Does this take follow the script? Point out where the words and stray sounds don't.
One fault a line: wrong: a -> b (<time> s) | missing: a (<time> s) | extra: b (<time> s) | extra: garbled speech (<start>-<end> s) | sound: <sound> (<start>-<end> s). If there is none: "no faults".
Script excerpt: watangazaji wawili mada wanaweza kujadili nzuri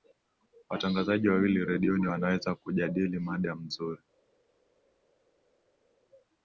wrong: mada -> redioni (1.6 s)
extra: mada (3.2 s)